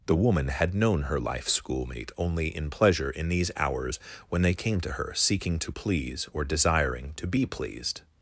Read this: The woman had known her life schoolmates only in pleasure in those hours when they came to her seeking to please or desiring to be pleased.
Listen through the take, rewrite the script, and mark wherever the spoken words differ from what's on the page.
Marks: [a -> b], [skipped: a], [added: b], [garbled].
The woman had known her life [schoolmates -> schoolmate] only in pleasure in [those -> these] hours when they came to her seeking to please or desiring to be pleased.